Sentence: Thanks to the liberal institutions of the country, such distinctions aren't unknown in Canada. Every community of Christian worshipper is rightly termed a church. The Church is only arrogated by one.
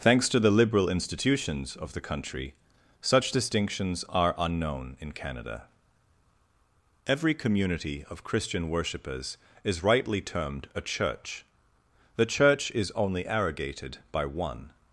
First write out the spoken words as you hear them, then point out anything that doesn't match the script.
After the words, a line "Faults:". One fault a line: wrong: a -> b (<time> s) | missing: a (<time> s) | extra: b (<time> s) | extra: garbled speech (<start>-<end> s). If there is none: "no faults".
Thanks to the liberal institutions of the country, such distinctions are unknown in Canada. Every community of Christian worshippers is rightly termed a church. The Church is only arrogated by one.
Faults:
wrong: aren't -> are (4.1 s)
wrong: worshipper -> worshippers (8.7 s)